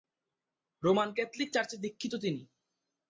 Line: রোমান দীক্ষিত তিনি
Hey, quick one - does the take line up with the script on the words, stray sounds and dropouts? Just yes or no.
no